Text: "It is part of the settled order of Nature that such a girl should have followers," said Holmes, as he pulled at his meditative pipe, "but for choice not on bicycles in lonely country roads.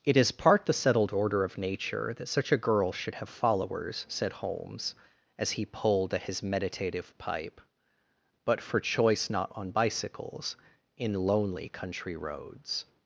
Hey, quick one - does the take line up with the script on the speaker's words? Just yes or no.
no